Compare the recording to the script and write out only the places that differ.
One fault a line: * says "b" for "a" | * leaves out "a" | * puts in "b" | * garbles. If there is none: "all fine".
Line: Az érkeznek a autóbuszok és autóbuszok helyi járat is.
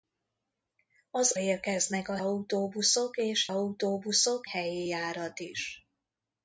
all fine